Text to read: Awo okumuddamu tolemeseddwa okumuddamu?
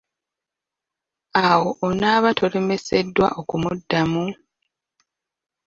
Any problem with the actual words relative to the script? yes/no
yes